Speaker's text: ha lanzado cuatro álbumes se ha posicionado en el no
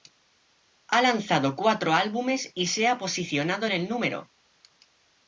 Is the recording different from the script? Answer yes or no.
yes